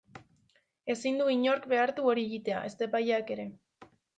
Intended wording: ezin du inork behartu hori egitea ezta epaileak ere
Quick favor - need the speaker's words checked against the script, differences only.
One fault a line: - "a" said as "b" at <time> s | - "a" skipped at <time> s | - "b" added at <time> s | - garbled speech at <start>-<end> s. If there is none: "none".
none